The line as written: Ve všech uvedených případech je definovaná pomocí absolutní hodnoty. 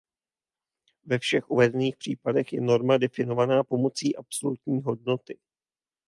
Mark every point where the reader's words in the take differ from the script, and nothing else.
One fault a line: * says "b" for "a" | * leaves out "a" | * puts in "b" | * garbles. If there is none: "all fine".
* puts in "norma"